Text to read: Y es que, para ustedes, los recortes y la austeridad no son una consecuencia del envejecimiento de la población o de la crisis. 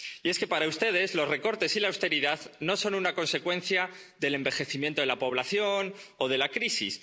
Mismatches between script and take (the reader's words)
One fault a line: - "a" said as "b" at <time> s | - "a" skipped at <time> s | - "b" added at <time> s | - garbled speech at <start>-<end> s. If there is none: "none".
none